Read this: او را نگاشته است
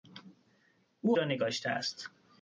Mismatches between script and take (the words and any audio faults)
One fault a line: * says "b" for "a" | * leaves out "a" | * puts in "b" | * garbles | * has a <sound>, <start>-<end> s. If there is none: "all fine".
all fine